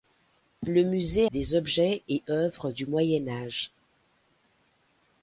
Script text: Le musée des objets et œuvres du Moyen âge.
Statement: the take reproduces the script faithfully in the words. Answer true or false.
true